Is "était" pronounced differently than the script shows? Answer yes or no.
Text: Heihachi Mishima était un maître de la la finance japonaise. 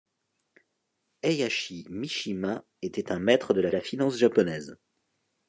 no